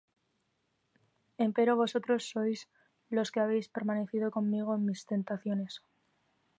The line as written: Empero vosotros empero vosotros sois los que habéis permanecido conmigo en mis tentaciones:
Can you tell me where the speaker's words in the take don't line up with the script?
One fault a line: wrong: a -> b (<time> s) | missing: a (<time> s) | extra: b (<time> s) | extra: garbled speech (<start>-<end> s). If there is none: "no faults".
missing: empero vosotros (2.2 s)